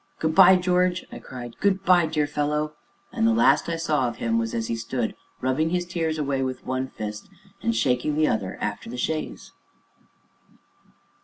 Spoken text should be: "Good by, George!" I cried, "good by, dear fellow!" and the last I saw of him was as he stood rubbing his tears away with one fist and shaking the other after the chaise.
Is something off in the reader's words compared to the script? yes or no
no